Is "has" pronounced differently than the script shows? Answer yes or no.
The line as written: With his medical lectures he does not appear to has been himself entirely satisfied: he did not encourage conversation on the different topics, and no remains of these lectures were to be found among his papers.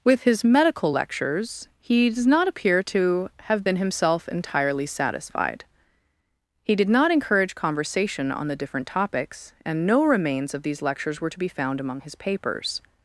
yes